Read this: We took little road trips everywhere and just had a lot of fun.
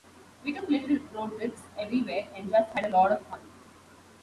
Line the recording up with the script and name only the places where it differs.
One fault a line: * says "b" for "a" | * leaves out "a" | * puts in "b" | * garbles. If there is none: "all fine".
all fine